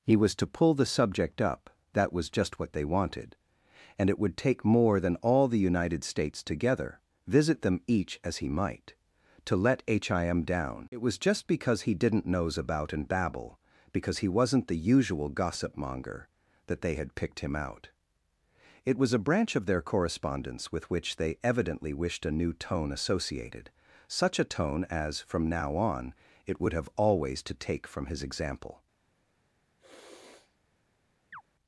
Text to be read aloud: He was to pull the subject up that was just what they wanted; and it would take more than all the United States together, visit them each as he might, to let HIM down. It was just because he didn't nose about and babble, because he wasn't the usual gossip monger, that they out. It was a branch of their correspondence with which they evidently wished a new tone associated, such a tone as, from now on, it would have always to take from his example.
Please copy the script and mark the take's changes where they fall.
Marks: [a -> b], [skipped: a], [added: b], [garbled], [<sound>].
He was to pull the subject up that was just what they wanted; and it would take more than all the United States together, visit them each as he might, to let HIM down. It was just because he didn't nose about and babble, because he wasn't the usual gossip monger, that they [added: had picked him] out. It was a branch of their correspondence with which they evidently wished a new tone associated, such a tone as, from now on, it would have always to take from his example. [sniff] [chirp]